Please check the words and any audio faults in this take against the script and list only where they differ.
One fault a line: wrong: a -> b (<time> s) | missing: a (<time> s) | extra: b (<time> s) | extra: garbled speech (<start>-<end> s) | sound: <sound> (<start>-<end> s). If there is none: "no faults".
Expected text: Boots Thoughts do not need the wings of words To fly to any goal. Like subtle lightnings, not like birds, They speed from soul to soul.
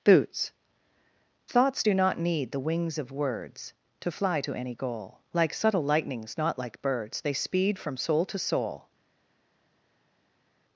no faults